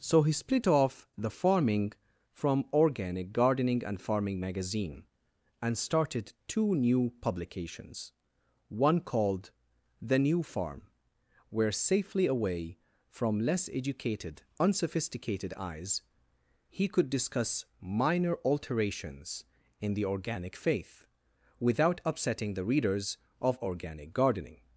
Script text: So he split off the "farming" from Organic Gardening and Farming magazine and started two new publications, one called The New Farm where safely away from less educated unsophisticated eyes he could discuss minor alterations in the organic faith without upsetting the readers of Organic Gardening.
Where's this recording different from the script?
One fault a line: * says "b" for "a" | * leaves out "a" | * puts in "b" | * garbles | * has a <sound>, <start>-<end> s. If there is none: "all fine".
all fine